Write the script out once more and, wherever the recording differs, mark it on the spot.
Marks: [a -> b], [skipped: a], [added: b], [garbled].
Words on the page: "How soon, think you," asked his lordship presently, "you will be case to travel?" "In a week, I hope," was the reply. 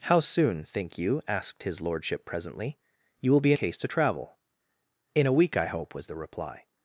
"How soon, think you," asked his lordship presently, "you will be case to travel?" "In a week, I hope," was the reply.